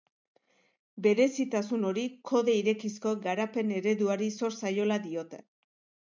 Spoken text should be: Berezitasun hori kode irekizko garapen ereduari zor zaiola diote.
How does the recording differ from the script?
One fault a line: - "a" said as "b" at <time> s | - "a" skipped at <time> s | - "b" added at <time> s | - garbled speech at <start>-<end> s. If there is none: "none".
none